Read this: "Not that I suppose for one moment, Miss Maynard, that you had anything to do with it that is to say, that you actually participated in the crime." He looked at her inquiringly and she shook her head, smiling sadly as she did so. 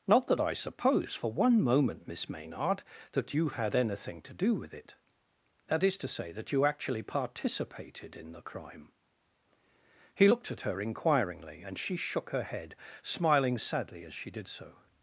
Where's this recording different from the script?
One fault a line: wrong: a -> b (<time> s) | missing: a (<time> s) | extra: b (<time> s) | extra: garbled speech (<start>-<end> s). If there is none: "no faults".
no faults